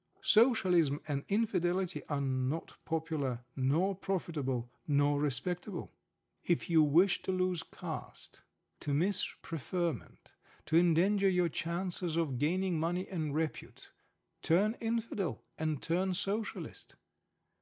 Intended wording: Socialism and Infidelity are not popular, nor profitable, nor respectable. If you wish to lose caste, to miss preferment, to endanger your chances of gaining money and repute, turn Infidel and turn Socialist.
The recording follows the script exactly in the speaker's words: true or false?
true